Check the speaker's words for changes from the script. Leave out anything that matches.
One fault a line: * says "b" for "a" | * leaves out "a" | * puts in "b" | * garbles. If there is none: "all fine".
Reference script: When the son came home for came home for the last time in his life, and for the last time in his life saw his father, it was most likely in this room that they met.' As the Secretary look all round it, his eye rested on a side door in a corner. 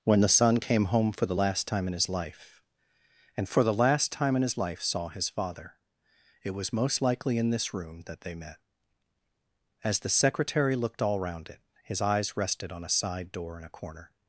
* leaves out "came home for"
* says "looked" for "look"
* says "eyes" for "eye"